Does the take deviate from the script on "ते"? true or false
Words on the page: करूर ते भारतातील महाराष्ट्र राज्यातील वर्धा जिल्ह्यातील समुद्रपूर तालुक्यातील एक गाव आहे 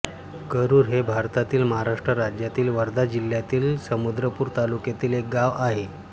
true